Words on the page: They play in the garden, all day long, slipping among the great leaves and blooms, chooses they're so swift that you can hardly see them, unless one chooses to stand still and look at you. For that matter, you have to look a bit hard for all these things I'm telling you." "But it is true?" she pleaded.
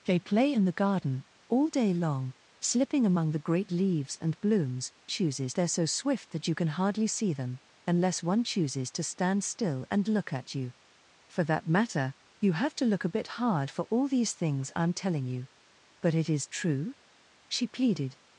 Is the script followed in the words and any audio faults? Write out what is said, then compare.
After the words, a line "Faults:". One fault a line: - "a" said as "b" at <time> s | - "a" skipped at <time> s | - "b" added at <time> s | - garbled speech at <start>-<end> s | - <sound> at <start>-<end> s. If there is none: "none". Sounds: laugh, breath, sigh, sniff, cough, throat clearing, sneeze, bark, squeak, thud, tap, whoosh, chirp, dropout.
They play in the garden, all day long, slipping among the great leaves and blooms, chooses they're so swift that you can hardly see them, unless one chooses to stand still and look at you. For that matter, you have to look a bit hard for all these things I'm telling you." "But it is true?" she pleaded.
Faults:
none